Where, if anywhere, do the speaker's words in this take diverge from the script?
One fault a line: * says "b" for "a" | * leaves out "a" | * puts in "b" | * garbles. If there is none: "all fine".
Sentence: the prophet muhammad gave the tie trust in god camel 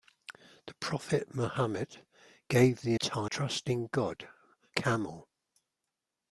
all fine